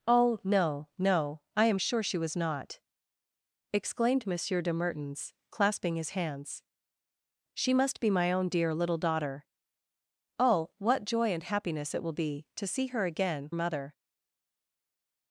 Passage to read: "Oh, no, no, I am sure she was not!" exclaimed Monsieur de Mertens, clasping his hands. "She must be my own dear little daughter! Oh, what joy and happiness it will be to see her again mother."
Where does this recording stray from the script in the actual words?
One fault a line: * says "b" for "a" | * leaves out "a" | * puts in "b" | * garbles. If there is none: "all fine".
all fine